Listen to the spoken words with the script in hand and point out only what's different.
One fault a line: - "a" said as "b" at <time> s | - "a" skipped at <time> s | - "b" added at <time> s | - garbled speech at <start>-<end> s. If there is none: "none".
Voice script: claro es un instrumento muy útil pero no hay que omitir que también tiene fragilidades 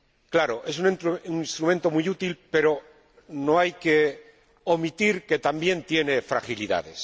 none